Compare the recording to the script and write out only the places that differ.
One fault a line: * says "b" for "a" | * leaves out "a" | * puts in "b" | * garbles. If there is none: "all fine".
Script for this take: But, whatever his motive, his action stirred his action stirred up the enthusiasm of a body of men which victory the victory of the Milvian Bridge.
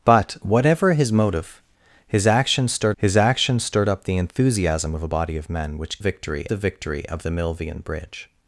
all fine